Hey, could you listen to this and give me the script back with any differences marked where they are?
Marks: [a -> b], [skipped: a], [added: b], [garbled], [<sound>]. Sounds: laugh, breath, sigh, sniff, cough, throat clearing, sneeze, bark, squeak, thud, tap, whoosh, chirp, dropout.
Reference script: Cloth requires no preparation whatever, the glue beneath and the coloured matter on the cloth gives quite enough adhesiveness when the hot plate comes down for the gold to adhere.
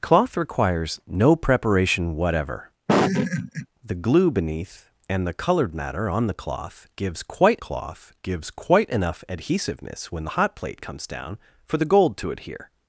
Cloth requires no preparation whatever, [laugh] the glue beneath and the coloured matter on the cloth gives quite [added: cloth gives quite] enough adhesiveness when the hot plate comes down for the gold to adhere.